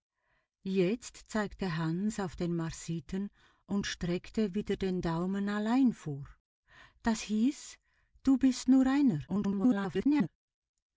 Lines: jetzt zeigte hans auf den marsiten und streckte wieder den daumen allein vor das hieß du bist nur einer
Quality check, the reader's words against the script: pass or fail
fail